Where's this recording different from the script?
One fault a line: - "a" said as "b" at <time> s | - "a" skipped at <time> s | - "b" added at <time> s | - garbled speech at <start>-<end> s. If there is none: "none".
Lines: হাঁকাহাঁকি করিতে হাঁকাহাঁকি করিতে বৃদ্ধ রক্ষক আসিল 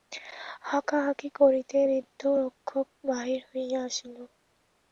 - "হাঁকাহাঁকি করিতে বৃদ্ধ রক্ষক" said as "বৃদ্ধ রক্ষক বাহির হইয়া" at 1.9 s